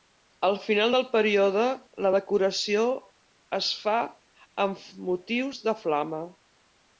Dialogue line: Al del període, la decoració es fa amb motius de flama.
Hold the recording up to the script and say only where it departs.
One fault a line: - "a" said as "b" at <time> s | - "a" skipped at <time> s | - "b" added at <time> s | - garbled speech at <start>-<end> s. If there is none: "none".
- "final" added at 0.6 s